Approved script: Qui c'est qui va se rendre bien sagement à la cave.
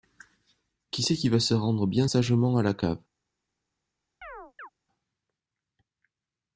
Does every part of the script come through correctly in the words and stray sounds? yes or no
no